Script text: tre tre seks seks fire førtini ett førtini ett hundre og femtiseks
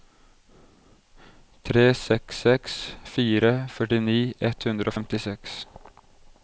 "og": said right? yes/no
yes